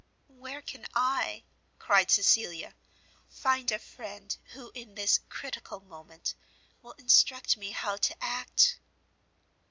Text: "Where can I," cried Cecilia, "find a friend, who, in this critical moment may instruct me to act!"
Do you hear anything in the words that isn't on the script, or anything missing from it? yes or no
yes